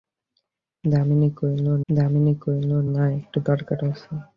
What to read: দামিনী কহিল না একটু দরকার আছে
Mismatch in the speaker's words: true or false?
true